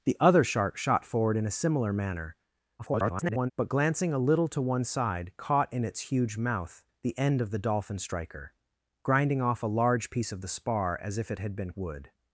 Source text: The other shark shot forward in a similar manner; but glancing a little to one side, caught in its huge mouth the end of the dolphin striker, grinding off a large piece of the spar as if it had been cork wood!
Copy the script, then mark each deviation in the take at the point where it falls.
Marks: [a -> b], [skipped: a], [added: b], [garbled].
The other shark shot forward in a similar manner; [garbled] but glancing a little to one side, caught in its huge mouth the end of the dolphin striker, grinding off a large piece of the spar as if it had been [skipped: cork] wood!